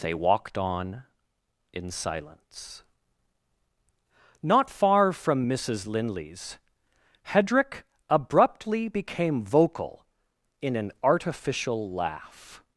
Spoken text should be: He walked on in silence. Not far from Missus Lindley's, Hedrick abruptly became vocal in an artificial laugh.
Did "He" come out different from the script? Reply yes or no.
yes